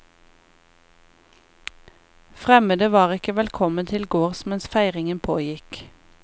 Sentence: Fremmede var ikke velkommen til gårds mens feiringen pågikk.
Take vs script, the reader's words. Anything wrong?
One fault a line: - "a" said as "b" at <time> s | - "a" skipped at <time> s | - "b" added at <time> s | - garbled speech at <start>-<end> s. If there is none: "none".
none